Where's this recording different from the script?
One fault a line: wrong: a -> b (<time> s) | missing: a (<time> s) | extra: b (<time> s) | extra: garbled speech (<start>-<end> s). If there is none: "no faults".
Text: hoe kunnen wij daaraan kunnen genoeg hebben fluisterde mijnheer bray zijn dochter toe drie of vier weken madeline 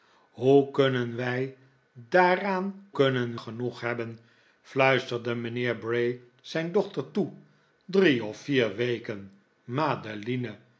no faults